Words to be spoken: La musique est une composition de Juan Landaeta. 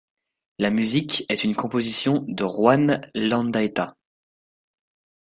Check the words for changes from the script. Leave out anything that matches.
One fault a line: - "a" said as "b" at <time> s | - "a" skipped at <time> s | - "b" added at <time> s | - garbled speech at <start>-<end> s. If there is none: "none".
none